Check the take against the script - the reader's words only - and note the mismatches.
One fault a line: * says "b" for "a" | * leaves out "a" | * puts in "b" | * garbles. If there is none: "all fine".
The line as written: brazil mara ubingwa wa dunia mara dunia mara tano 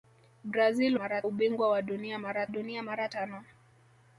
all fine